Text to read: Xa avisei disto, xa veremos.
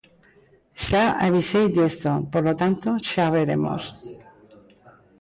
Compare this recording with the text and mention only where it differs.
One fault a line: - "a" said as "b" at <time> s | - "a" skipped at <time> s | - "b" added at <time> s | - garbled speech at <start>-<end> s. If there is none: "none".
- "polo tanto" added at 2.3 s